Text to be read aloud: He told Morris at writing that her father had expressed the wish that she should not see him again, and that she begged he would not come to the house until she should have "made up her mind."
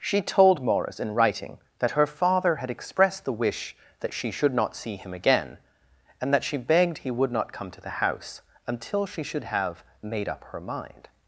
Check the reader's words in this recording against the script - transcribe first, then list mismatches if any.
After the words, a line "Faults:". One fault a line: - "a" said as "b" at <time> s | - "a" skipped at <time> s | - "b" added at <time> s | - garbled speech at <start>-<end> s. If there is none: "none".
She told Morris in writing that her father had expressed the wish that she should not see him again, and that she begged he would not come to the house until she should have "made up her mind."
Faults:
- "He" said as "She" at 0.0 s
- "at" said as "in" at 1.0 s